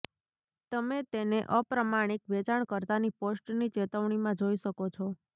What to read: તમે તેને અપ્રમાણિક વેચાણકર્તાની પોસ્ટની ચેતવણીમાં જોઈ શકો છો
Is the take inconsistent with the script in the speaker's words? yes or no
no